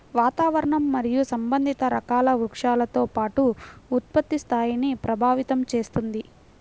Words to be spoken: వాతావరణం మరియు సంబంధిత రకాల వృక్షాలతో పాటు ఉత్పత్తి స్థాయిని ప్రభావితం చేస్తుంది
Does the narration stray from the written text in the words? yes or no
no